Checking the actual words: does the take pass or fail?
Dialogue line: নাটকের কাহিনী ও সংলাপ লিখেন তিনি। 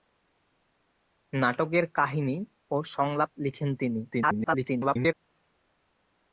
fail